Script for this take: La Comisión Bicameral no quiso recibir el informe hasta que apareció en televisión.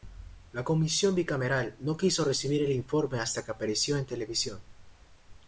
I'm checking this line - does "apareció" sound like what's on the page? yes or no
yes